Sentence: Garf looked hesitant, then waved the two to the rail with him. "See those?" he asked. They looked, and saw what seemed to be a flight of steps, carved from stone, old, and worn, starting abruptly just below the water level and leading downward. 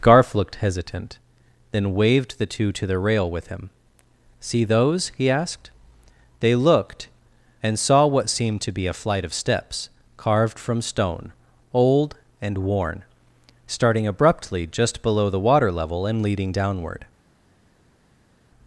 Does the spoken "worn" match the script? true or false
true